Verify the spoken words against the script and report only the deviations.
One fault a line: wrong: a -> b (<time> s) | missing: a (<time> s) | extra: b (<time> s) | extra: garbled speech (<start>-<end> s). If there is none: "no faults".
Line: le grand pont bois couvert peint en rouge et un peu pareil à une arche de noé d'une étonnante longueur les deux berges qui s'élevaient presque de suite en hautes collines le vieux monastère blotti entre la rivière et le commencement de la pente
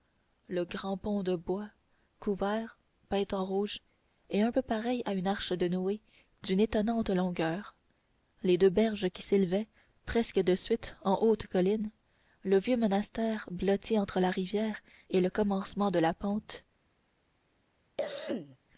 extra: de (1.2 s)